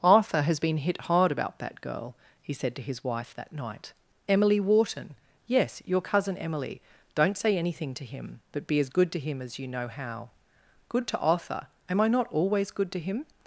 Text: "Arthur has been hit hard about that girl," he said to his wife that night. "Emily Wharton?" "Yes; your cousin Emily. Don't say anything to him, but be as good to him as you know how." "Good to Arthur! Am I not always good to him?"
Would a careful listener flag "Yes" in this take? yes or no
no